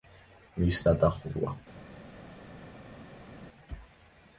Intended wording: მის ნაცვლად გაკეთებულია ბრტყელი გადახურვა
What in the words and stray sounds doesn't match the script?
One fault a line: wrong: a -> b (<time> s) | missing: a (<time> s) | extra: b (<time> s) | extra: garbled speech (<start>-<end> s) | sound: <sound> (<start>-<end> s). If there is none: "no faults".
missing: ნაცვლად გაკეთებულია ბრტყელი (0.8 s)